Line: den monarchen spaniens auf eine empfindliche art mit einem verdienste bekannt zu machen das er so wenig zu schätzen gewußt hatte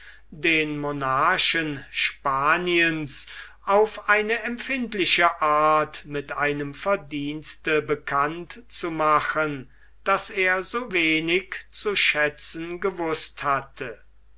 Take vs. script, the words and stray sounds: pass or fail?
pass